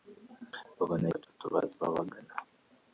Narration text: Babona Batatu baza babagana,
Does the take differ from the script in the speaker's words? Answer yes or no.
no